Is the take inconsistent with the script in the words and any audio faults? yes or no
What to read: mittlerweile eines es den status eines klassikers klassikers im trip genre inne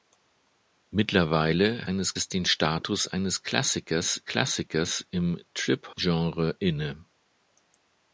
no